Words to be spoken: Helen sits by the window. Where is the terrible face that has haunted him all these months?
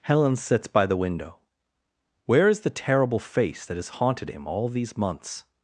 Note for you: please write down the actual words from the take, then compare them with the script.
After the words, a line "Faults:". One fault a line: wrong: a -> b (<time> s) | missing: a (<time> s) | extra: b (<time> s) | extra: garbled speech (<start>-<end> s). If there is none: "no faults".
Helen sits by the window. Where is the terrible face that has haunted him all these months?
Faults:
no faults